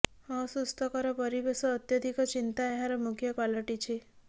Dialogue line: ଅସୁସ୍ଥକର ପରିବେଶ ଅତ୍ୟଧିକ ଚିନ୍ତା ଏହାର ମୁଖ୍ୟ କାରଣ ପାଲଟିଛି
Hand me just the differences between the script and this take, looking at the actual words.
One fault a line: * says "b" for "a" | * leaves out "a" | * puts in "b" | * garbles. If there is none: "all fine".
* leaves out "କାରଣ"